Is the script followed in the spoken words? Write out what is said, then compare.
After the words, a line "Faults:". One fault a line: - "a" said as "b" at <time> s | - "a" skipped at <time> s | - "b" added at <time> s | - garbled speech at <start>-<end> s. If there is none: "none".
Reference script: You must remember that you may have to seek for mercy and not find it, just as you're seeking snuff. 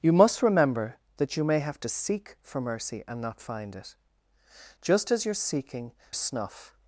You must remember that you may have to seek for mercy and not find it, just as you're seeking snuff.
Faults:
none